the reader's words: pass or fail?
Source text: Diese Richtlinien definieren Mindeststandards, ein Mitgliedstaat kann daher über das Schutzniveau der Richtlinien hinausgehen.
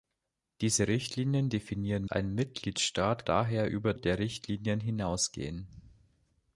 fail